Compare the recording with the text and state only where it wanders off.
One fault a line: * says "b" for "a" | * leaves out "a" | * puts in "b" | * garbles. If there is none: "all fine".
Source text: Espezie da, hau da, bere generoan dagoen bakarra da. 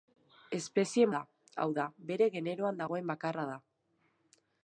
all fine